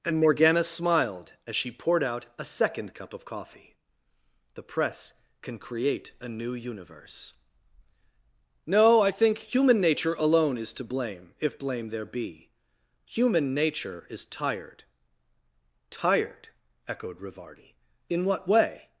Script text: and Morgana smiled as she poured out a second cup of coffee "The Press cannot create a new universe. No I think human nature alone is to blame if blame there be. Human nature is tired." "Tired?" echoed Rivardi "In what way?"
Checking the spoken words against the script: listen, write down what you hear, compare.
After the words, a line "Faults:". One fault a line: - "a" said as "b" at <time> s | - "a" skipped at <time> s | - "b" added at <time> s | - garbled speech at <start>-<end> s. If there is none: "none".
and Morgana smiled as she poured out a second cup of coffee "The Press can create a new universe. No I think human nature alone is to blame if blame there be. Human nature is tired." "Tired?" echoed Rivardi "In what way?"
Faults:
- "cannot" said as "can" at 5.4 s